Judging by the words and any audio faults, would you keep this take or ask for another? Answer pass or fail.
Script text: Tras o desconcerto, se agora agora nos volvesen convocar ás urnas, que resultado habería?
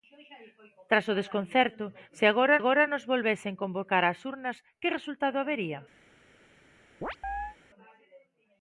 fail